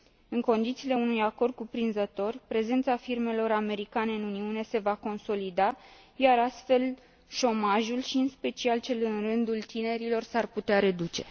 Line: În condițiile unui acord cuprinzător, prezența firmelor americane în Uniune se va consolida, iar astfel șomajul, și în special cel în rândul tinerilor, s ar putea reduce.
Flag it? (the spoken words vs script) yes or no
no